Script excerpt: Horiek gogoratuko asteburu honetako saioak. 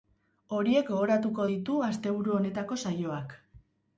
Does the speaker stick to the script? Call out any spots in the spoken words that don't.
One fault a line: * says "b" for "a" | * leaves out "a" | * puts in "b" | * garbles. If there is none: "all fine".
* puts in "ditu"